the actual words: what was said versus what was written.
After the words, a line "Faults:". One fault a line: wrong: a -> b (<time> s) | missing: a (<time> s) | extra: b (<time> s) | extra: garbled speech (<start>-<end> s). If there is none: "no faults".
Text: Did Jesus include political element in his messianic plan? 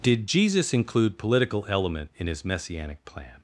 Did Jesus include political element in his messianic plan?
Faults:
no faults